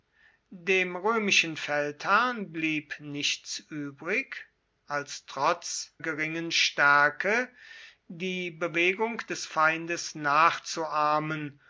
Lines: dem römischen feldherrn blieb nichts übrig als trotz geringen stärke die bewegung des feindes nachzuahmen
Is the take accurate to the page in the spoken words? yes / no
yes